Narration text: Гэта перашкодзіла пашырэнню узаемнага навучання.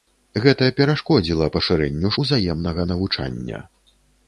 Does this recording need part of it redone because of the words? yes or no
no